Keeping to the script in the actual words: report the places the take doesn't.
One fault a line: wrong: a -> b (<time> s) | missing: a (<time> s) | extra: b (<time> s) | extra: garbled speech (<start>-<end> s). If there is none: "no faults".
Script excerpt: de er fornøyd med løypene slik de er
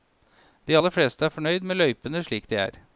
extra: aller fleste (0.8 s)